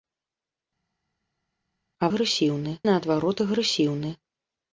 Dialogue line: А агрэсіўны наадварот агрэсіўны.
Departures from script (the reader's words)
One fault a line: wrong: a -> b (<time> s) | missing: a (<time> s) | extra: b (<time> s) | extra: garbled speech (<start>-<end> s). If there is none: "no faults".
no faults